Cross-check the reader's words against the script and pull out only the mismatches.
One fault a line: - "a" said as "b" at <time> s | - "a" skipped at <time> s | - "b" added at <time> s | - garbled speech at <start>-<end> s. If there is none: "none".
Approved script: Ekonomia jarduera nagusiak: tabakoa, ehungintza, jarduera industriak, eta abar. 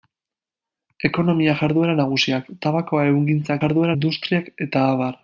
none